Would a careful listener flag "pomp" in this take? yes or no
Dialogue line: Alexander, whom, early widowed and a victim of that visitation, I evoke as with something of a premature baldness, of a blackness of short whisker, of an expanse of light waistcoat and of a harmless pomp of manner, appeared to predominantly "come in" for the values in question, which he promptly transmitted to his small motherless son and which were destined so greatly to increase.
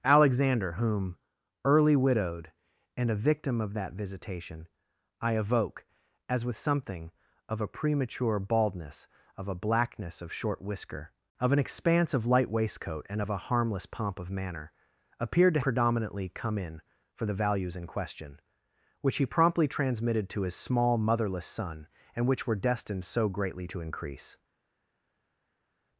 no